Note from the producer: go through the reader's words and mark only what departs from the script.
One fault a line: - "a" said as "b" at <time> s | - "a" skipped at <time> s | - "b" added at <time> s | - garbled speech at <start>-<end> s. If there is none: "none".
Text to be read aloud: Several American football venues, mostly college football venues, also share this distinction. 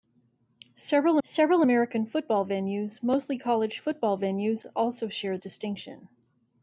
- "several" added at 1.2 s
- "this" skipped at 5.4 s